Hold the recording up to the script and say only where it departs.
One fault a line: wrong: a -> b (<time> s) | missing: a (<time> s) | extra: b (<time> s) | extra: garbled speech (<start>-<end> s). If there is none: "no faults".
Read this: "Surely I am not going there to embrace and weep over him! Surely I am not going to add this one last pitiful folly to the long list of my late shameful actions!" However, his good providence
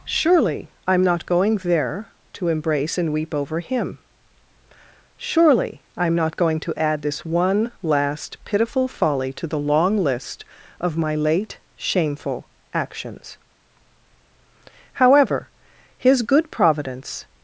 no faults